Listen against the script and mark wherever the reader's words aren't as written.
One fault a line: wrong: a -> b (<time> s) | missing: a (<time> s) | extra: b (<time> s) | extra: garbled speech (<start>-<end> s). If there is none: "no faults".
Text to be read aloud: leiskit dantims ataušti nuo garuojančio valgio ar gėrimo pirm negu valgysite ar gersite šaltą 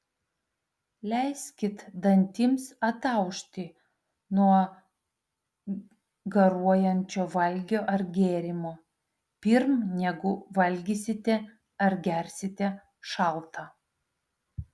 no faults